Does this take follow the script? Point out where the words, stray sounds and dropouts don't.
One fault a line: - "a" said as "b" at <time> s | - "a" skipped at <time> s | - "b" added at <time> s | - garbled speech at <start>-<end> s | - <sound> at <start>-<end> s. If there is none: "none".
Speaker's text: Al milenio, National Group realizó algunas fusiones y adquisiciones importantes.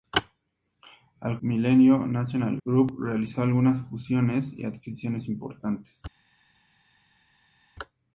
none